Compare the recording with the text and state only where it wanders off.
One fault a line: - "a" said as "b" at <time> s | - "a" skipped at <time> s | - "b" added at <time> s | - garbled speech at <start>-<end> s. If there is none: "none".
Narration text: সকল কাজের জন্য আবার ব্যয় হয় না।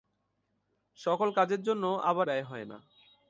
none